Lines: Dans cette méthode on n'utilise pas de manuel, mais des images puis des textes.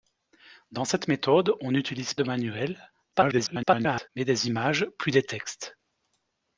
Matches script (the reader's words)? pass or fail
fail